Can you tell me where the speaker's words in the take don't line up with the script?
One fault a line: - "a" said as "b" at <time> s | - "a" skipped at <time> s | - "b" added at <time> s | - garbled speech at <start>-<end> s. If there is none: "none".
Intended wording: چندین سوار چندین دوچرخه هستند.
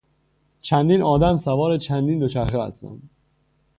- "آدم" added at 1.0 s